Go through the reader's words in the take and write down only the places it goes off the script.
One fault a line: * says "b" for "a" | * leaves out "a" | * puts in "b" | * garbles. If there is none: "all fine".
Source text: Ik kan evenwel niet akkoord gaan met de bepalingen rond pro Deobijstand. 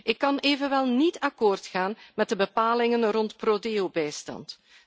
all fine